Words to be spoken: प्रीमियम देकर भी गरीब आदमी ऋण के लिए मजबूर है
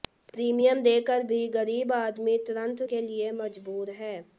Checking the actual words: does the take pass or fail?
pass